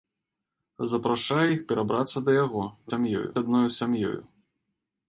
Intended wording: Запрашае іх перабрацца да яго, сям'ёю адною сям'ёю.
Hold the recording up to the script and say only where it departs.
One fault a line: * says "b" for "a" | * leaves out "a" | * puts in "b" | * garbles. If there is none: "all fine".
all fine